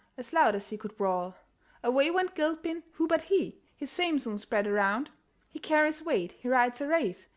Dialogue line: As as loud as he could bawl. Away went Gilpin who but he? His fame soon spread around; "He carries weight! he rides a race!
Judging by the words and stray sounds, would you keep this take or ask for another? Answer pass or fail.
fail